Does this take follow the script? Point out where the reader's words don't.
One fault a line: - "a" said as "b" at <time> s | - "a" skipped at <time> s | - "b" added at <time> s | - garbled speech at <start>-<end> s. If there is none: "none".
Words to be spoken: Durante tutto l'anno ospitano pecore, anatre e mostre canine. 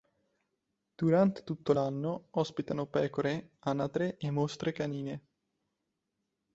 none